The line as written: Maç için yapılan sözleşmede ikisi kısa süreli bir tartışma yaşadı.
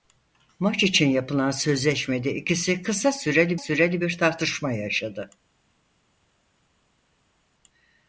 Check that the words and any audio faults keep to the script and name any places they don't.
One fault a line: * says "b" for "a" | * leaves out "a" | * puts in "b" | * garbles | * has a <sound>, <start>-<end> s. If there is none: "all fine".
* puts in "süreli"